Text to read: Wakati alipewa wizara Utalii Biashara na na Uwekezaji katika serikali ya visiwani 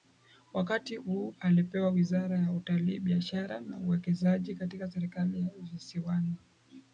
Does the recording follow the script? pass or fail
fail